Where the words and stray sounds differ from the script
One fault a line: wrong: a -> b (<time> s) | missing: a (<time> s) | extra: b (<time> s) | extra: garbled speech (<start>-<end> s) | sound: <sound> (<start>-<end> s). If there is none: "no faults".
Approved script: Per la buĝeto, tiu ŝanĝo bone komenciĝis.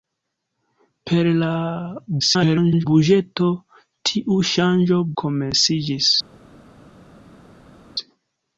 extra: garbled speech (2.2-2.9 s)
missing: bone (5.0 s)